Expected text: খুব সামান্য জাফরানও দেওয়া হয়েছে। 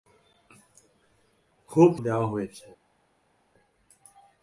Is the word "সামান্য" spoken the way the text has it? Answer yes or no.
no